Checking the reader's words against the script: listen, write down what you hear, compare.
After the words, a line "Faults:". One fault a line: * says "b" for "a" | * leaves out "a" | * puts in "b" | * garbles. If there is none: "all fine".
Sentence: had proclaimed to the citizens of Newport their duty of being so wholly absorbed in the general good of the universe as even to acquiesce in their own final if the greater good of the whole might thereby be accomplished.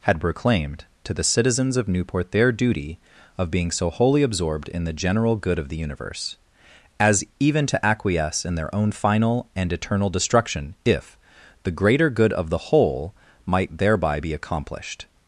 had proclaimed to the citizens of Newport their duty of being so wholly absorbed in the general good of the universe as even to acquiesce in their own final and eternal destruction, if the greater good of the whole might thereby be accomplished.
Faults:
* puts in "and eternal destruction"